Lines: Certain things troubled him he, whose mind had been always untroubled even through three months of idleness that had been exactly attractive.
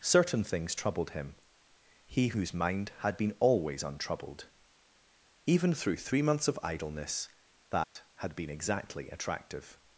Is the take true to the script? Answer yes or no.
yes